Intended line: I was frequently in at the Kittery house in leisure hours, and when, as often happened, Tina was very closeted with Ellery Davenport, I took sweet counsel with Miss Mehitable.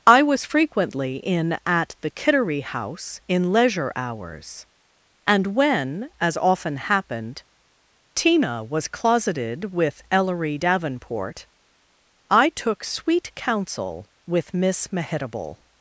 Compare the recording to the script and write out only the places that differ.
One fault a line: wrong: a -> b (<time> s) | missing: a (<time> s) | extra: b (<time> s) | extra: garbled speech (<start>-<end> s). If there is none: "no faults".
missing: very (8.9 s)